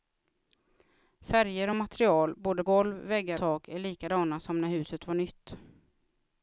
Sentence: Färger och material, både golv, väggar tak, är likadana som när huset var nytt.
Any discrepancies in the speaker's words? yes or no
no